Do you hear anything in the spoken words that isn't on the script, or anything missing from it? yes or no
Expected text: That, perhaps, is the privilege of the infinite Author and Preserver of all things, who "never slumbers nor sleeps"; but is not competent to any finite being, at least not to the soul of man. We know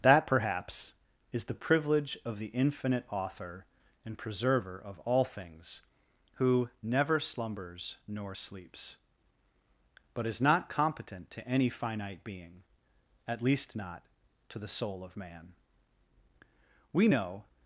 no